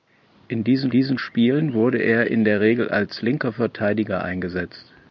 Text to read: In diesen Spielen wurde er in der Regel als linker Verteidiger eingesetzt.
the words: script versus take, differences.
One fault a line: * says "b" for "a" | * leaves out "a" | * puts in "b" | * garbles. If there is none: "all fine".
* puts in "diesen"